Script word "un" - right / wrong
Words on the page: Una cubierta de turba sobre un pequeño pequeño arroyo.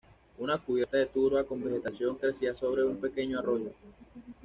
right